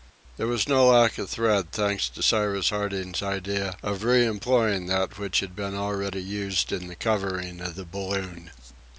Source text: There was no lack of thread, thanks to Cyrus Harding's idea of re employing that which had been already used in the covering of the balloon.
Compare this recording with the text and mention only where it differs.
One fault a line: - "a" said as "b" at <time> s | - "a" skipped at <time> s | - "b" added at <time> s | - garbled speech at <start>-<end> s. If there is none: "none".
none